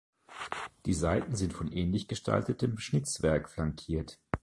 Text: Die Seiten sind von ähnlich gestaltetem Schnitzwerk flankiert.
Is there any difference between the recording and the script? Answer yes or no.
no